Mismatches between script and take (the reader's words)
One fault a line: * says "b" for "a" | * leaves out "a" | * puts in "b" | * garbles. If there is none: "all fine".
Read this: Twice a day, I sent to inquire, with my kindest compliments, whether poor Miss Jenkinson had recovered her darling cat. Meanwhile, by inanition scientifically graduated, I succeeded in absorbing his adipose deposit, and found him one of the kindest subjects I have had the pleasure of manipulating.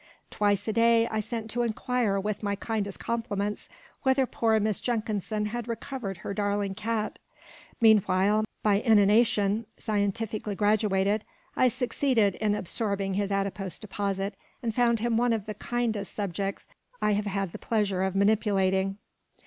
all fine